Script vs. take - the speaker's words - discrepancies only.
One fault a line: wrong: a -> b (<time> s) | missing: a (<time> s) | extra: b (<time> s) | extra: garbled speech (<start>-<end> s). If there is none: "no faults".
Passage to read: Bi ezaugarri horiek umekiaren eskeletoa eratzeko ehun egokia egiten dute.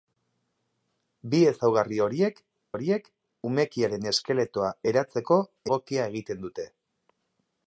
extra: horiek (2.7 s)
missing: ehun (5.4 s)